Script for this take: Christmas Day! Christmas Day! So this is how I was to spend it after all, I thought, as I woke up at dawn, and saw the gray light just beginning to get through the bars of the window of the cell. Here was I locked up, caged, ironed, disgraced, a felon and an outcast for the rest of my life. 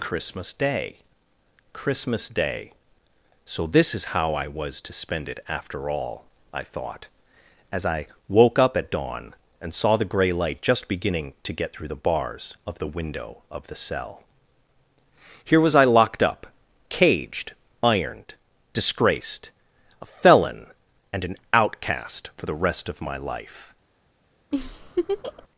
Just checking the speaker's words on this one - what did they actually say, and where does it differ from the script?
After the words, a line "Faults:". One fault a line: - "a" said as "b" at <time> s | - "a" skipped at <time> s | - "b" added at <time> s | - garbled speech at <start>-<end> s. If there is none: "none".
Christmas Day! Christmas Day! So this is how I was to spend it after all, I thought, as I woke up at dawn, and saw the gray light just beginning to get through the bars of the window of the cell. Here was I locked up, caged, ironed, disgraced, a felon and an outcast for the rest of my life.
Faults:
none